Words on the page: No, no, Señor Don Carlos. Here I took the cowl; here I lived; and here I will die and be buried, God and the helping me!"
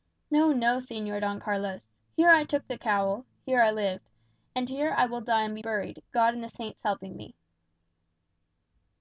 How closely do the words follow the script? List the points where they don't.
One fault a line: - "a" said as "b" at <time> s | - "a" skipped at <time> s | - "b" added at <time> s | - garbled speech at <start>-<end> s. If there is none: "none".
- "saints" added at 6.5 s